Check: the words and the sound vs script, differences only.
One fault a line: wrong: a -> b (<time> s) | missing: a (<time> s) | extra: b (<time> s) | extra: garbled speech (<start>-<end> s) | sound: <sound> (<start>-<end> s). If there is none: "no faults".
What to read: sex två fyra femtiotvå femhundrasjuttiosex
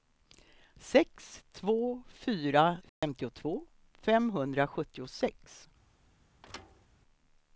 sound: dropout (2.9-3.0 s)
sound: thud (6.4-6.9 s)